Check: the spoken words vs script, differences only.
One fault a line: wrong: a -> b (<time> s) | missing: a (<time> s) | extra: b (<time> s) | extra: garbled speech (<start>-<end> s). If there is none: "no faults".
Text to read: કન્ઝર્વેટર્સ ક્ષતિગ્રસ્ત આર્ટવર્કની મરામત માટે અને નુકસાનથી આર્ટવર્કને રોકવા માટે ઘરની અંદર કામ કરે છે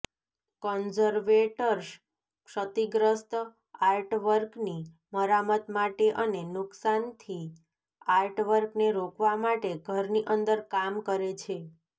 no faults